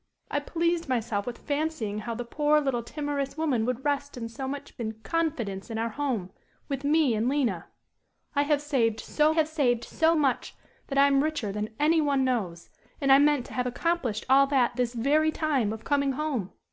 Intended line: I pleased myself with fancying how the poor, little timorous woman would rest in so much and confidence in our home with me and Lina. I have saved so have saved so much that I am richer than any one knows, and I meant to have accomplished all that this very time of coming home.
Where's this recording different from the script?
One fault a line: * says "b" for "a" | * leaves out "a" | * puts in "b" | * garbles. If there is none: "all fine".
all fine